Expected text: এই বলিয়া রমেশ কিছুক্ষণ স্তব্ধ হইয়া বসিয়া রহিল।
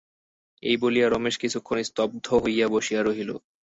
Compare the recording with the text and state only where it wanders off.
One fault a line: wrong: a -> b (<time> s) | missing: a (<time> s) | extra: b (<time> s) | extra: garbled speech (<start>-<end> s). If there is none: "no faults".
no faults